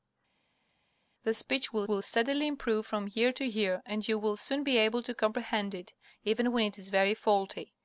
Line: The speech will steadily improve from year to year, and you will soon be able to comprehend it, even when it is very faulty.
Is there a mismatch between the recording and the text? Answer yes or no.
yes